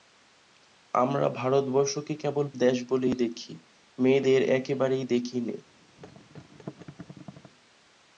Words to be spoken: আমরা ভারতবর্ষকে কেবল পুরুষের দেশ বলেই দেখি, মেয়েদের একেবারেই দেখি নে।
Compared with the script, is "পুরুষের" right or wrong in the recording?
wrong